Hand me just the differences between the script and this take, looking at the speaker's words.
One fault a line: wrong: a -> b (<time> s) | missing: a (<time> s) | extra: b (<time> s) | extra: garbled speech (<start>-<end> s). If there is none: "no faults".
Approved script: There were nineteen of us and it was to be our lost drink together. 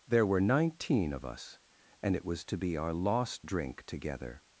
no faults